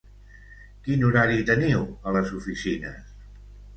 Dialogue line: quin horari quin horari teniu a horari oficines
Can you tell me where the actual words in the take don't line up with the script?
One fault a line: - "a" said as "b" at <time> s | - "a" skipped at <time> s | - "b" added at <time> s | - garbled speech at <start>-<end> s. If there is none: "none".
- "quin horari" skipped at 1.4 s
- "horari" said as "les" at 2.2 s